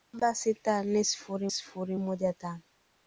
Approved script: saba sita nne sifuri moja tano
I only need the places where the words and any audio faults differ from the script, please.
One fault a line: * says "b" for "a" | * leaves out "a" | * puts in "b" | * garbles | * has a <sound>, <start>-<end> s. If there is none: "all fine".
* puts in "sifuri"